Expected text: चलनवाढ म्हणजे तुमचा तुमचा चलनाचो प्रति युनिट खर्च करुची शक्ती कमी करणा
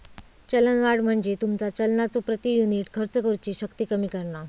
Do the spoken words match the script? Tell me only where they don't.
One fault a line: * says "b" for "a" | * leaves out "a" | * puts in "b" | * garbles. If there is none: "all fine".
* leaves out "तुमचा"